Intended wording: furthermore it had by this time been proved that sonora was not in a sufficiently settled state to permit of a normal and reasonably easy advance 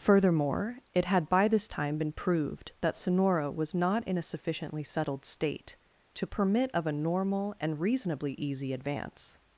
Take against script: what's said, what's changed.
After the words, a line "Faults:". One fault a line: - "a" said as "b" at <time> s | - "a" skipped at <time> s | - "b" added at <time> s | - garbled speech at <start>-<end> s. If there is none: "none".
furthermore it had by this time been proved that sonora was not in a sufficiently settled state to permit of a normal and reasonably easy advance
Faults:
none